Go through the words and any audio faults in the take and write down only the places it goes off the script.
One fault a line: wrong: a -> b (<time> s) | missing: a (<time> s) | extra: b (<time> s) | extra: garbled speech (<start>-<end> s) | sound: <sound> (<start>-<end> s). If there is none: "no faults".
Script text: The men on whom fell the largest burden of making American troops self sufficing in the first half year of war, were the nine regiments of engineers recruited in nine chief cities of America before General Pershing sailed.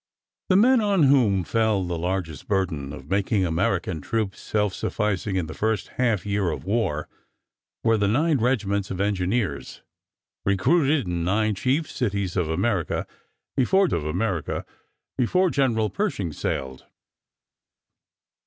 extra: of America before (13.9 s)